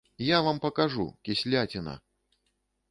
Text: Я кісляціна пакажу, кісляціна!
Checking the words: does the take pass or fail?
fail